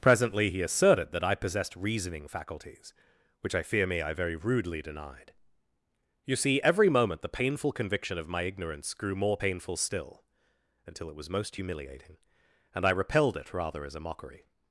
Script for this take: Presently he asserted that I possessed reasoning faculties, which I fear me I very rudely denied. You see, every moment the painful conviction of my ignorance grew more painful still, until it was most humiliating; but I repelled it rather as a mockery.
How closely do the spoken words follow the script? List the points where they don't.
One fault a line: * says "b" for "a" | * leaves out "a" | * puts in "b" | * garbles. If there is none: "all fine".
* says "and" for "but"